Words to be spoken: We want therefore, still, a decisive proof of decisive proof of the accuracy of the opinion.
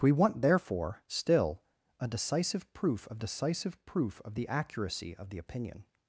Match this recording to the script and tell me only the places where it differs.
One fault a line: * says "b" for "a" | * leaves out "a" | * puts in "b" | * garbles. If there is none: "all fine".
all fine